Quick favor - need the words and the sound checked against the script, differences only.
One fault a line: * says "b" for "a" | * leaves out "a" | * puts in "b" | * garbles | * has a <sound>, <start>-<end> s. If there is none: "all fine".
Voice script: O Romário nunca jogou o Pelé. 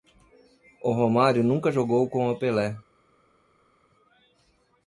* puts in "com"